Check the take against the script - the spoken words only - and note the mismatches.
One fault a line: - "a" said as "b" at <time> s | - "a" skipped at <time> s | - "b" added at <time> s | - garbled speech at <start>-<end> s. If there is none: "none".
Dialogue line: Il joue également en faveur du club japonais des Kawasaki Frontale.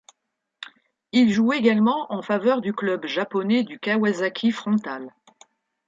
- "des" said as "du" at 3.6 s